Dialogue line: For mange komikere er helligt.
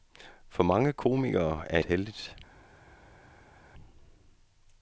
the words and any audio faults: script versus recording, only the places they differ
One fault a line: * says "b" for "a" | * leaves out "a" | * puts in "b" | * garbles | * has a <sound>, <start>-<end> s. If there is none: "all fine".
all fine